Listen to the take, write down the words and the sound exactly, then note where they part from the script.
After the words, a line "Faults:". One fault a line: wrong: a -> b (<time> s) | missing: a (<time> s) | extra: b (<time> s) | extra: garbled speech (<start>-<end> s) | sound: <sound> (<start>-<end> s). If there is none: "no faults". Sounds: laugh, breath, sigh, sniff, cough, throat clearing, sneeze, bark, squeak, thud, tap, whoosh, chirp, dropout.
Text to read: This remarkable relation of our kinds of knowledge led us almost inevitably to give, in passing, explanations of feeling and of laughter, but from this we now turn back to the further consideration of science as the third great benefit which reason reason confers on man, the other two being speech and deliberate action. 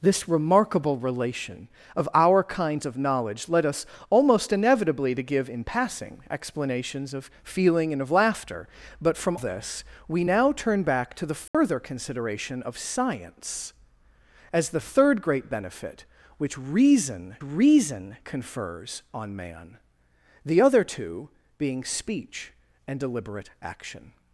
This remarkable relation of our kinds of knowledge led us almost inevitably to give, in passing, explanations of feeling and of laughter, but from this we now turn back to the further consideration of science as the third great benefit which reason reason confers on man, the other two being speech and deliberate action.
Faults:
sound: dropout (11.5-11.5 s)